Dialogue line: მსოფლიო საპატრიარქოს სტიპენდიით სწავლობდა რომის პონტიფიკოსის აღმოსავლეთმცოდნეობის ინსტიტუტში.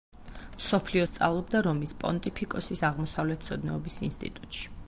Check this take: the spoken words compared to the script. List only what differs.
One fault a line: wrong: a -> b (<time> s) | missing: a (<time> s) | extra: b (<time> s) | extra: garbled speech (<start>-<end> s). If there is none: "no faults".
missing: საპატრიარქოს სტიპენდიით (1.0 s)